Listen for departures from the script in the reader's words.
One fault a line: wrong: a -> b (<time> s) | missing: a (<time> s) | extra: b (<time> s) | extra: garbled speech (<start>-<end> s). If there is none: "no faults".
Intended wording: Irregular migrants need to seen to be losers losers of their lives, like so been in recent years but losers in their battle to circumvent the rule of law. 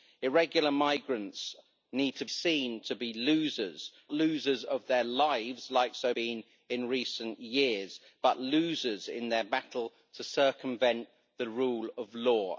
no faults